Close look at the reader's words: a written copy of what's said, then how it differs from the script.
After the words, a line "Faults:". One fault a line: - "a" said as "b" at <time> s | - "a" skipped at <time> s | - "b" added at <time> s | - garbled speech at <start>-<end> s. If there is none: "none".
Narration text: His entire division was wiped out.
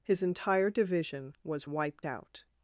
His entire division was wiped out.
Faults:
none